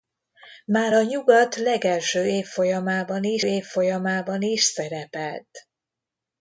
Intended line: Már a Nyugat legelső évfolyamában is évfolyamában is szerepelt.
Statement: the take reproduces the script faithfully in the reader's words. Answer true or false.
true